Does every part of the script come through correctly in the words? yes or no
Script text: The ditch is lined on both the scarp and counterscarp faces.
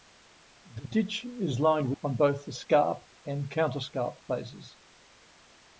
yes